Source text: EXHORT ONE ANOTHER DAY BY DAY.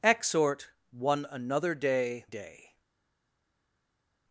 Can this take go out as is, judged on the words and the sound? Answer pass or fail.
fail